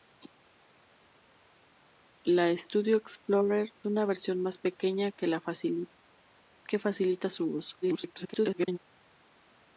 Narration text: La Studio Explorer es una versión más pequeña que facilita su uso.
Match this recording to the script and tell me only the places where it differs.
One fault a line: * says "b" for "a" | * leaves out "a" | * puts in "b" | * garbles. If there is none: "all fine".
* leaves out "es"
* garbles